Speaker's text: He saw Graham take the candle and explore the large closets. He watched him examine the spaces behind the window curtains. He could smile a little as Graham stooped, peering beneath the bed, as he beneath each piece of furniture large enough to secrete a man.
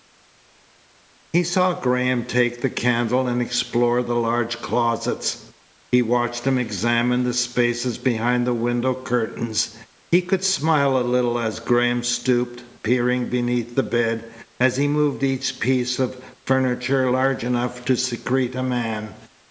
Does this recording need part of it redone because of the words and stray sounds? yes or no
yes